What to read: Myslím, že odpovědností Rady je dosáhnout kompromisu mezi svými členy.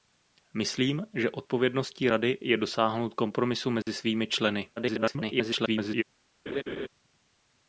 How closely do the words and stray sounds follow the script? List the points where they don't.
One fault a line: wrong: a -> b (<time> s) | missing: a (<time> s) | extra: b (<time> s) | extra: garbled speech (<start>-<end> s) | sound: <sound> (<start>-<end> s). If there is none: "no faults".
sound: dropout (3.8-3.9 s)
extra: garbled speech (4.8-6.0 s)
sound: laugh (6.5-6.9 s)